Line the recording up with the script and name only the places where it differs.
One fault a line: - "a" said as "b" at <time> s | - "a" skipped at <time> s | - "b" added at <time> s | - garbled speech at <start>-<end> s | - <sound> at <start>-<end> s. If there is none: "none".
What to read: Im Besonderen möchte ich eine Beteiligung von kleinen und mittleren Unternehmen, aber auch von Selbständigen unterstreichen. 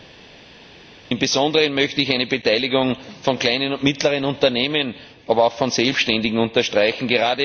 none